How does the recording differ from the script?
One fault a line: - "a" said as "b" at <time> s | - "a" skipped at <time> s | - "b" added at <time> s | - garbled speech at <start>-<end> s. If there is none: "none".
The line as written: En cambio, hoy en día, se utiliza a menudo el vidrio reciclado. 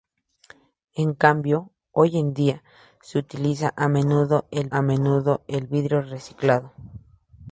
- "a menudo el" added at 4.7 s